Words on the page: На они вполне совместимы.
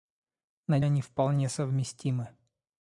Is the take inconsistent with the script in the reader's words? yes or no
no